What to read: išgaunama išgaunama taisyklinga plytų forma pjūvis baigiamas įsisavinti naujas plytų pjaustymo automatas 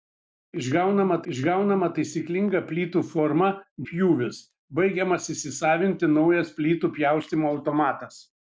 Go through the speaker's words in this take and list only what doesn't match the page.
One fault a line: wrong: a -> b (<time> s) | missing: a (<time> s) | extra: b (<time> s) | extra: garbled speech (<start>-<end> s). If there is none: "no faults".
no faults